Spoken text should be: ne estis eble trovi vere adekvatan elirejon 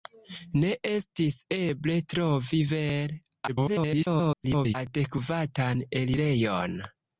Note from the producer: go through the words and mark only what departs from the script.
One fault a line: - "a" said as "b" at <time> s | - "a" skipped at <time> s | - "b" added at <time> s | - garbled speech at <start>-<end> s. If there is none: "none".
- garbled speech at 3.5-4.7 s